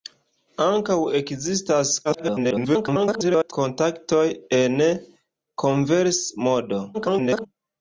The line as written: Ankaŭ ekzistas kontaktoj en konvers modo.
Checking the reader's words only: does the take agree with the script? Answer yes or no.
no